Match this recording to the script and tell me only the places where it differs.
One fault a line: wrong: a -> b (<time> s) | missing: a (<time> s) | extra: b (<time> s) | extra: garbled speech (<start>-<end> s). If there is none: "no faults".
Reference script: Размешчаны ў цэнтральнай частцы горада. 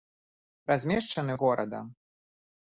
missing: цэнтральнай частцы (1.4 s)